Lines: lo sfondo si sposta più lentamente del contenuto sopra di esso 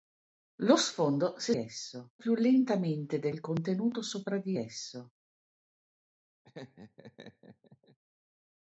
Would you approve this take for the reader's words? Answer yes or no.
no